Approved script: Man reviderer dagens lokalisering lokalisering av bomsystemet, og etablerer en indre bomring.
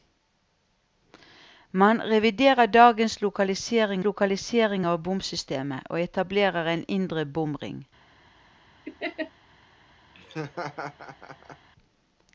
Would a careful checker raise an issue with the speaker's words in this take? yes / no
no